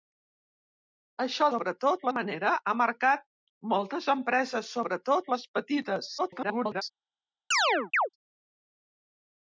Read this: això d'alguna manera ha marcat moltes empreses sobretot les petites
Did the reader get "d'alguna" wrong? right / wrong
wrong